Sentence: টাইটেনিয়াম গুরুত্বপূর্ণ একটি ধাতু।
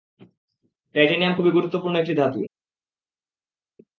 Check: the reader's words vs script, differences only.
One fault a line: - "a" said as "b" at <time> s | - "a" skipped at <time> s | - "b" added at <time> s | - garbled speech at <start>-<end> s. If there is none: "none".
- "খুবই" added at 1.4 s